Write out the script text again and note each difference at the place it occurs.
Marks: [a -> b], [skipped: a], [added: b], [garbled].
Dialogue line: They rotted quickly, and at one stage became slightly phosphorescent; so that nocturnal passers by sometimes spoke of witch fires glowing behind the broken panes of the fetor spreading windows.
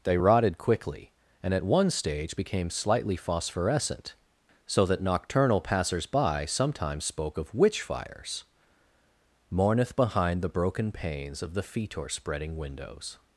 They rotted quickly, and at one stage became slightly phosphorescent; so that nocturnal passers by sometimes spoke of witch fires [glowing -> mourneth] behind the broken panes of the fetor spreading windows.